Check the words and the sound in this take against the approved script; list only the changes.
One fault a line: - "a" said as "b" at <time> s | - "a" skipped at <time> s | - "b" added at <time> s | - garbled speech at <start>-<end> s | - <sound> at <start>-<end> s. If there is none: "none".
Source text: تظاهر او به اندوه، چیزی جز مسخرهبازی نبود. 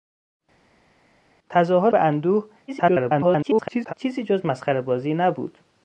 - "او" skipped at 1.9 s
- garbled speech at 2.7-3.9 s